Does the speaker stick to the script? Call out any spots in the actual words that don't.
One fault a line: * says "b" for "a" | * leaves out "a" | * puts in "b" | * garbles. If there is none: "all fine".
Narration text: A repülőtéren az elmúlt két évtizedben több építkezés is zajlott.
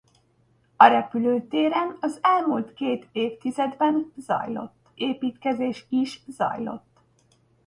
* says "zajlott" for "több"